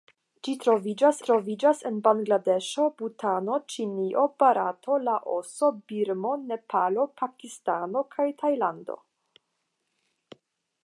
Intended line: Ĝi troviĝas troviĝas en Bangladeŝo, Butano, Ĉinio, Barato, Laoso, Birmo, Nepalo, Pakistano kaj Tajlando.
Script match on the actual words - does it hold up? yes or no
yes